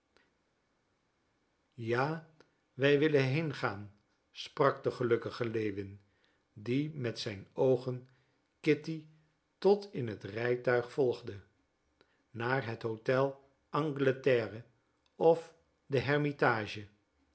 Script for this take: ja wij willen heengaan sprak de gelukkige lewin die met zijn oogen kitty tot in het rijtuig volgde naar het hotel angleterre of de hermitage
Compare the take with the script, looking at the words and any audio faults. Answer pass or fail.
pass